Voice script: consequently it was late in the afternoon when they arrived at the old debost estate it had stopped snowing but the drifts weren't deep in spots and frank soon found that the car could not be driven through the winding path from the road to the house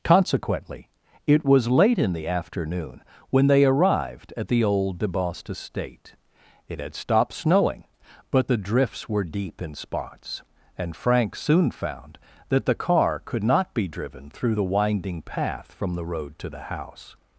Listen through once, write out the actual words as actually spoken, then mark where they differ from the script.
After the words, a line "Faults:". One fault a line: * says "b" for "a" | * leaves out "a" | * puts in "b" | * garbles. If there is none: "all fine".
consequently it was late in the afternoon when they arrived at the old debost estate it had stopped snowing but the drifts were deep in spots and frank soon found that the car could not be driven through the winding path from the road to the house
Faults:
* says "were" for "weren't"